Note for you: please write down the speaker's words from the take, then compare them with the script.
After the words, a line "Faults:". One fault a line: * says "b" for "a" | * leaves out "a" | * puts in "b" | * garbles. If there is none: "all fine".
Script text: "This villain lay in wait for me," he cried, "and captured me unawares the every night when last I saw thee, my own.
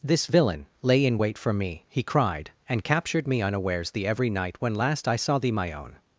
"This villain lay in wait for me," he cried, "and captured me unawares the every night when last I saw thee, my own.
Faults:
all fine